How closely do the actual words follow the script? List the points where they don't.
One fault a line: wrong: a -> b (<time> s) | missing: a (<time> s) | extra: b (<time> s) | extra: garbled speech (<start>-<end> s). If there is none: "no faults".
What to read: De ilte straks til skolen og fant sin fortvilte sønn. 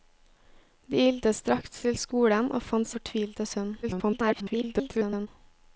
missing: sin (2.9 s)
extra: garbled speech (3.8-5.3 s)